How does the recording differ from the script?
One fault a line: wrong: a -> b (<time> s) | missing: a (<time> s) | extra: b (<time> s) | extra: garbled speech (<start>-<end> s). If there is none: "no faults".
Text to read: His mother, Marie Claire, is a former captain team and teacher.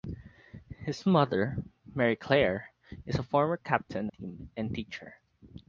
no faults